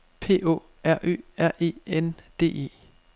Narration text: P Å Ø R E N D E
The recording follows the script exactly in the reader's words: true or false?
false